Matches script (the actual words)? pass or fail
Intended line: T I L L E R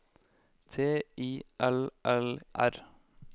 fail